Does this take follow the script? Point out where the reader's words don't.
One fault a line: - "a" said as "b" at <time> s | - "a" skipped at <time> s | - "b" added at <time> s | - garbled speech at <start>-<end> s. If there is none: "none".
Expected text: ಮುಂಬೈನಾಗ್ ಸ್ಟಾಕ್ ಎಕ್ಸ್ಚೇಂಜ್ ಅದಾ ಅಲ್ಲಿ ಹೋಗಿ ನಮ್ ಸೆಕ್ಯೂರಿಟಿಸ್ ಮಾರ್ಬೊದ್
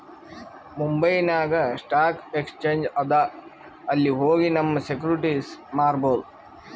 none